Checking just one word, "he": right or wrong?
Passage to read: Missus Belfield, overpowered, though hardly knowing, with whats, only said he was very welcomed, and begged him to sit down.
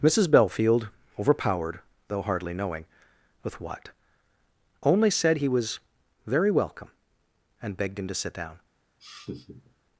right